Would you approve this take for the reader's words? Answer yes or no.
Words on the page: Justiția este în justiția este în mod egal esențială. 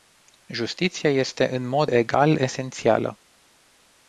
no